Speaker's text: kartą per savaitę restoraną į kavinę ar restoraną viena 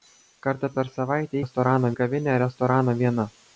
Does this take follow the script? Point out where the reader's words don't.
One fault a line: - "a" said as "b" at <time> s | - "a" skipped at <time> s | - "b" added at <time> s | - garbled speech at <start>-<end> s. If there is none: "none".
none